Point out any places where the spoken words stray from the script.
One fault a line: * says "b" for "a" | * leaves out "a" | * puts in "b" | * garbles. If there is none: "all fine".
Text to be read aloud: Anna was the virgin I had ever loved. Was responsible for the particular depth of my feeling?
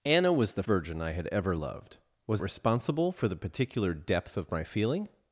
all fine